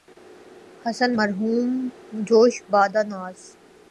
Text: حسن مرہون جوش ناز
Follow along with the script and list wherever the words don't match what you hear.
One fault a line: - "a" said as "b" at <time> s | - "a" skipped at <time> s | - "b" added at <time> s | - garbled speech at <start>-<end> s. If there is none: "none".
- "بادۂ" added at 2.7 s